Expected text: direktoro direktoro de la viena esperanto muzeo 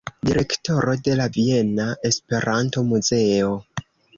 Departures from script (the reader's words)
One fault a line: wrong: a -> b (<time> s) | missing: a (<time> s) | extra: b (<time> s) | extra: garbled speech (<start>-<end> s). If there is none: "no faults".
missing: direktoro (0.9 s)